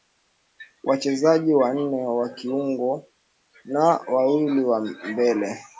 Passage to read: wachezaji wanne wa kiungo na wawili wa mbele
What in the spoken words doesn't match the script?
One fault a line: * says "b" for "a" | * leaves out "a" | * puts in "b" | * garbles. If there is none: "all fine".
all fine